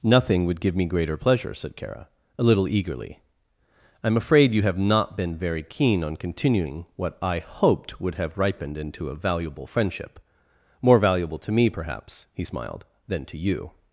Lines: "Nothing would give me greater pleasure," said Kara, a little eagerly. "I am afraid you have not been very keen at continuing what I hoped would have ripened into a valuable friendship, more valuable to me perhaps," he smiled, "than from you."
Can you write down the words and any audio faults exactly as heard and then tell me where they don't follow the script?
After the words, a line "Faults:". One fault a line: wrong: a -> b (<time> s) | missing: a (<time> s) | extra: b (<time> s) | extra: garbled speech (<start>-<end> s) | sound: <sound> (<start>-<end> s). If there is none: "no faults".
"Nothing would give me greater pleasure," said Kara, a little eagerly. "I am afraid you have not been very keen on continuing what I hoped would have ripened into a valuable friendship, more valuable to me perhaps," he smiled, "than to you."
Faults:
wrong: at -> on (6.0 s)
wrong: from -> to (13.2 s)